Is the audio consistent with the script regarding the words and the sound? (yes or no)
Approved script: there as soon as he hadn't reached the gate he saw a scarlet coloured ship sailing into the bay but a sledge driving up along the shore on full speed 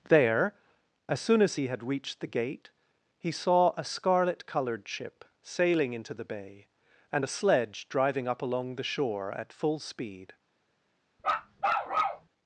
no